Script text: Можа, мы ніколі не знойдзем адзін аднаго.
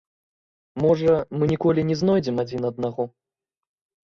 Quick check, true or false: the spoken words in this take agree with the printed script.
true